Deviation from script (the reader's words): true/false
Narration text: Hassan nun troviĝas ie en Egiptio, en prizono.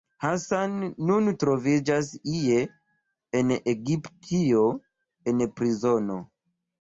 false